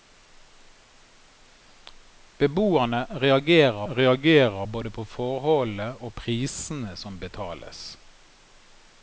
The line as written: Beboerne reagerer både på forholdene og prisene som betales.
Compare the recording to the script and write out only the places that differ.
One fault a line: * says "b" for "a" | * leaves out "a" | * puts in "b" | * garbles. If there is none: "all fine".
* puts in "reagerer"